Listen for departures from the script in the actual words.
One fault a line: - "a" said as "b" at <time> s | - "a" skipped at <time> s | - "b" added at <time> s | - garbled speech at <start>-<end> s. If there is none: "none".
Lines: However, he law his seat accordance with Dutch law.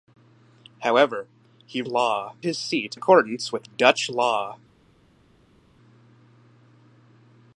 none